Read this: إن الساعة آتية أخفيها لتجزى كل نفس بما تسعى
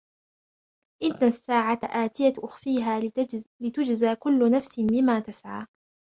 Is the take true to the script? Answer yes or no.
yes